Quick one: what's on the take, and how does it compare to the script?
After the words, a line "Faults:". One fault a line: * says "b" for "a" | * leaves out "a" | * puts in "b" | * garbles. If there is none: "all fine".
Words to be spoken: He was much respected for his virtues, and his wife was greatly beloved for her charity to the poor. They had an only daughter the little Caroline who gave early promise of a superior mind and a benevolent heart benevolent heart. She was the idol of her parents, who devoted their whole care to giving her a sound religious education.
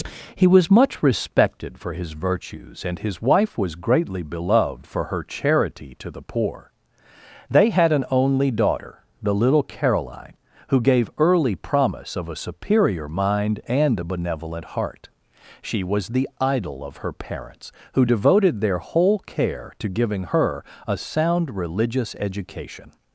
He was much respected for his virtues, and his wife was greatly beloved for her charity to the poor. They had an only daughter the little Caroline who gave early promise of a superior mind and a benevolent heart. She was the idol of her parents, who devoted their whole care to giving her a sound religious education.
Faults:
* leaves out "benevolent heart"